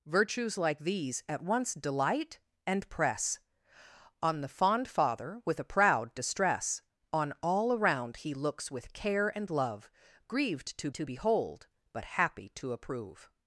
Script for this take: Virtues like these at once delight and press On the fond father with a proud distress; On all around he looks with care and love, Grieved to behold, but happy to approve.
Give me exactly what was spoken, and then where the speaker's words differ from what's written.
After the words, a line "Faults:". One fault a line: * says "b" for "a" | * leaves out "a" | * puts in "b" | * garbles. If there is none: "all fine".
Virtues like these at once delight and press On the fond father with a proud distress; On all around he looks with care and love, Grieved to to behold, but happy to approve.
Faults:
* puts in "to"